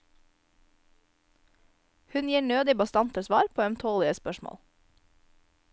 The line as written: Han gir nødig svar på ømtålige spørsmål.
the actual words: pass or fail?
fail